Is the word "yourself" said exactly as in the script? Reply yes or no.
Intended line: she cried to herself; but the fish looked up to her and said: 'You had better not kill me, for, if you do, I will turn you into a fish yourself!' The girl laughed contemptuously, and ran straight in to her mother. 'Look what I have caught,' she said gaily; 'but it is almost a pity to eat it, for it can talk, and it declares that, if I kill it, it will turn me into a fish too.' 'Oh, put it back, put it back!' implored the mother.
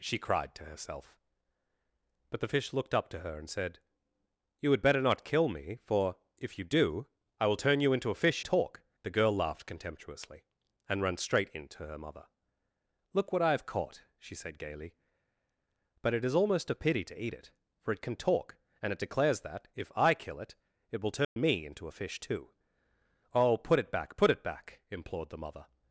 no